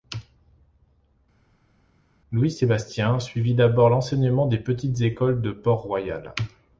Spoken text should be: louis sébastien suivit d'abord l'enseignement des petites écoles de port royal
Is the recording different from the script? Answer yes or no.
no